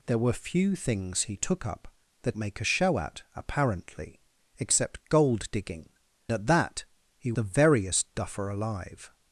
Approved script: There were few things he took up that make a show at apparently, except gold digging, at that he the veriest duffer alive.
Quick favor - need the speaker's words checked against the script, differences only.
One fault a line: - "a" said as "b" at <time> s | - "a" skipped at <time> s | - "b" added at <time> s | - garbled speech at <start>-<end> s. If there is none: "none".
none